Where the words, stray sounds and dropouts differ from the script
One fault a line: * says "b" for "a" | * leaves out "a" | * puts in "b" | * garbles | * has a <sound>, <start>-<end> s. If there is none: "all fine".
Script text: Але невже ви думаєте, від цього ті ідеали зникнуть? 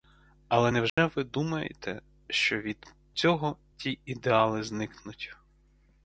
* has a dropout, 0.9-1.0 s
* puts in "що"